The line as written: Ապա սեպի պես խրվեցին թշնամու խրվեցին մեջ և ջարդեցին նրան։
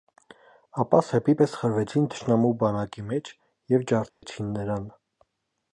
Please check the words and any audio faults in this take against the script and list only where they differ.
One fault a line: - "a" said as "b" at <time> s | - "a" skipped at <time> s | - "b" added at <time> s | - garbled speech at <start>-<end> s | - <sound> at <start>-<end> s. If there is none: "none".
- "խրվեցին" said as "բանակի" at 2.6 s
- dropout at 4.1-4.2 s